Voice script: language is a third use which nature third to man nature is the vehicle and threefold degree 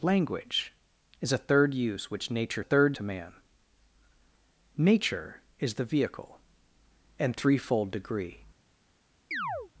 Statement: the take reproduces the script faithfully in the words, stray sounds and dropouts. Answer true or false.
false